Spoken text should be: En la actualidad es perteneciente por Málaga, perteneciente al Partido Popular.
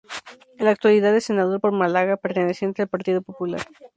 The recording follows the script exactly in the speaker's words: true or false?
false